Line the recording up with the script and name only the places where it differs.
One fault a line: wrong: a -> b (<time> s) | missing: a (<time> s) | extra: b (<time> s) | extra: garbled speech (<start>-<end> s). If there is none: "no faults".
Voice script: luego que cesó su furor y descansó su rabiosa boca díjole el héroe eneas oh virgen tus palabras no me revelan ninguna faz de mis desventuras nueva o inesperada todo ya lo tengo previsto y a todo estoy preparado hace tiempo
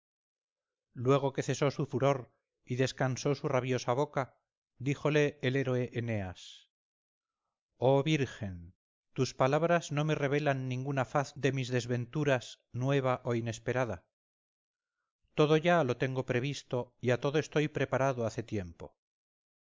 no faults